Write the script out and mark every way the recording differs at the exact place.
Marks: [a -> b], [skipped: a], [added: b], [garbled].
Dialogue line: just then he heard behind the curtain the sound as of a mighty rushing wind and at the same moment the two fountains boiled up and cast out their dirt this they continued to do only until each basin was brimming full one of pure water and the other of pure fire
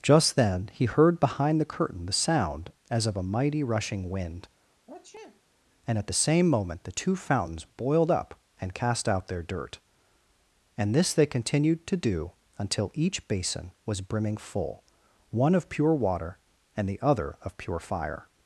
just then he heard behind the curtain the sound as of a mighty rushing wind and at the same moment the two fountains boiled up and cast out their dirt [added: and] this they continued to do [skipped: only] until each basin was brimming full one of pure water and the other of pure fire